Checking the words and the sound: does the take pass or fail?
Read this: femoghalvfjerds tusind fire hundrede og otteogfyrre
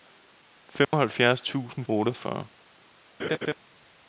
fail